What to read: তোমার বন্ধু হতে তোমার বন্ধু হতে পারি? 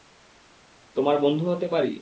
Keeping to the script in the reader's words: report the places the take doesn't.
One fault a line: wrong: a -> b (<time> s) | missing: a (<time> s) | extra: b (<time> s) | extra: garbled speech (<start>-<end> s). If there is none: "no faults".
missing: তোমার বন্ধু হতে (1.7 s)